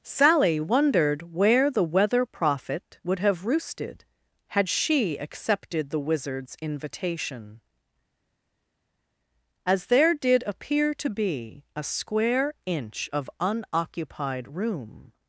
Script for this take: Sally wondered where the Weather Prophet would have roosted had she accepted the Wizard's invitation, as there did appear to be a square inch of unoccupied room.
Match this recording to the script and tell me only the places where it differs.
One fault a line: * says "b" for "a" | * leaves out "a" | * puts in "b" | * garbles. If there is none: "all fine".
all fine